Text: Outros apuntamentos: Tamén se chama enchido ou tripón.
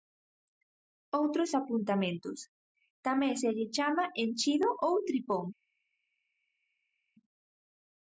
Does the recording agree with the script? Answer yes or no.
no